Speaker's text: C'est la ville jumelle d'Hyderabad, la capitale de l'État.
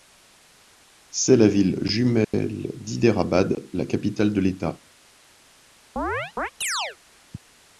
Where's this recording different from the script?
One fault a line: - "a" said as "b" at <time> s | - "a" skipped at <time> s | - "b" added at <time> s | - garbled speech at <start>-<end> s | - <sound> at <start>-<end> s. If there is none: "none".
- dropout at 2.2-2.3 s
- chirp at 6.0-7.0 s